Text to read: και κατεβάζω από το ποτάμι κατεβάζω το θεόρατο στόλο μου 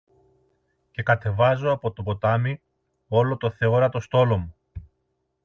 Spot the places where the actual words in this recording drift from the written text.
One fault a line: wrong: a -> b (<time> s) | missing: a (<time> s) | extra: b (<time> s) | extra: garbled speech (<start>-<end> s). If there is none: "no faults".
wrong: κατεβάζω -> όλο (3.1 s)